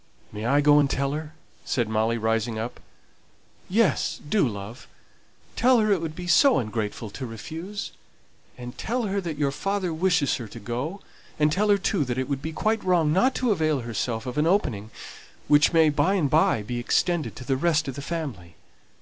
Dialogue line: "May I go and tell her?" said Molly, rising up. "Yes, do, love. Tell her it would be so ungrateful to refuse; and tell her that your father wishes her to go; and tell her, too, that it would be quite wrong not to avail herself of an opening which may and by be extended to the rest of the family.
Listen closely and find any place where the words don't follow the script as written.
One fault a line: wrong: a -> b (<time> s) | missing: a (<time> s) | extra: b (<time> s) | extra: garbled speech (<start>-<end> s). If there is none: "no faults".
extra: by (15.9 s)